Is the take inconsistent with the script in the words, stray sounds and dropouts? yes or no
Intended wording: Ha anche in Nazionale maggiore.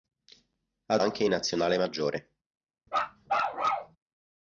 yes